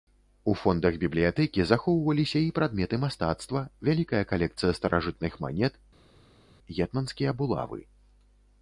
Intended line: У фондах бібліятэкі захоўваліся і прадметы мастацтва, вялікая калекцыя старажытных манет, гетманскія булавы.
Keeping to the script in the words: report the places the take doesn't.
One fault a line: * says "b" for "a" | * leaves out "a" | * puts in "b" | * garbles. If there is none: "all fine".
all fine